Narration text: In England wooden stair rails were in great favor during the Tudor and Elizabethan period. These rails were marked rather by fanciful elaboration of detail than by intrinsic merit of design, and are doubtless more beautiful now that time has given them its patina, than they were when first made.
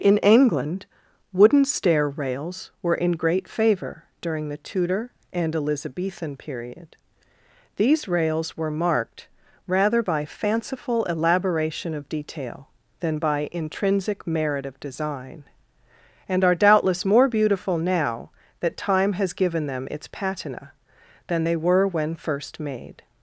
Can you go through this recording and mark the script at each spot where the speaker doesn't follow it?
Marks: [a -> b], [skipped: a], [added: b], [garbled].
In England wooden stair rails were in great favor during the Tudor and Elizabethan period. These rails were marked rather by fanciful elaboration of detail than by intrinsic merit of design, and are doubtless more beautiful now that time has given them its patina, than they were when first made.